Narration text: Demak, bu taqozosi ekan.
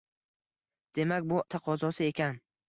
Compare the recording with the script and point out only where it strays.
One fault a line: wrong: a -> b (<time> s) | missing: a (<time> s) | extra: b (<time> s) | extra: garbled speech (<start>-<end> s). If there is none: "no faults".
no faults